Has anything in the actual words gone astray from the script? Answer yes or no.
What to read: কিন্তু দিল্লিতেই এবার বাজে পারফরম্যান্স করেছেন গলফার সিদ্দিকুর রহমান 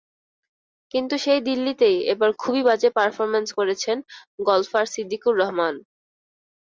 yes